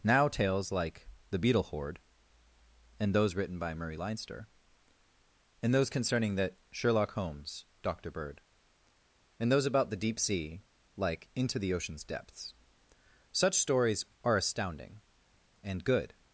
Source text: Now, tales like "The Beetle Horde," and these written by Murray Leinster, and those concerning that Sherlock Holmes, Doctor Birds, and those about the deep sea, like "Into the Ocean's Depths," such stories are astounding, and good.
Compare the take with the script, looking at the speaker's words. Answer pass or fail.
fail